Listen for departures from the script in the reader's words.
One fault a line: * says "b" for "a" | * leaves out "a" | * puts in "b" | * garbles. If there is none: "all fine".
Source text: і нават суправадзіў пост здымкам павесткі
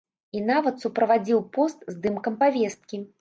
all fine